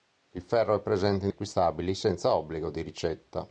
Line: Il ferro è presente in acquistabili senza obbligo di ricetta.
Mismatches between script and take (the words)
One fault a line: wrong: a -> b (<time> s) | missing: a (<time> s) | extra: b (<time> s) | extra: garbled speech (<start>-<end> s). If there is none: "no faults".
no faults